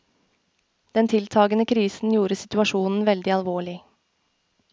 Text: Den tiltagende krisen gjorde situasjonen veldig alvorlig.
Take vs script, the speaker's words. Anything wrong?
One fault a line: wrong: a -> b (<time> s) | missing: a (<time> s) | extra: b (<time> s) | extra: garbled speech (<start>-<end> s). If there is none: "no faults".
no faults